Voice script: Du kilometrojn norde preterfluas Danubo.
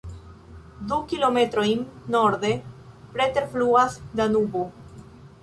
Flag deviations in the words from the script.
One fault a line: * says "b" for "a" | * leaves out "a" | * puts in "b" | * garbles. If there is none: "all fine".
all fine